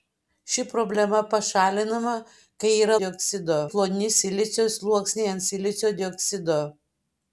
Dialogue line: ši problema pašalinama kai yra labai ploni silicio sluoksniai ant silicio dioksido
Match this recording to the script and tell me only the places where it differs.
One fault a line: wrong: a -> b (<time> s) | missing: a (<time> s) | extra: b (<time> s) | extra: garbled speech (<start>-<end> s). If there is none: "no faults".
wrong: labai -> dioksido (3.0 s)